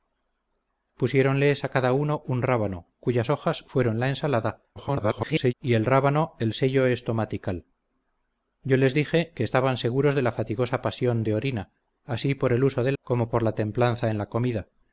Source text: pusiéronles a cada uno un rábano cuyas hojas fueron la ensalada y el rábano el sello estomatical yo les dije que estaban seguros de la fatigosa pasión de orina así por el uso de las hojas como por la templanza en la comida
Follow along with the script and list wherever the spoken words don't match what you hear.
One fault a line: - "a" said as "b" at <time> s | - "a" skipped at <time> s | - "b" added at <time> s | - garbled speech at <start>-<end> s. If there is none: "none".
- garbled speech at 4.8-5.5 s
- "las hojas" skipped at 12.9 s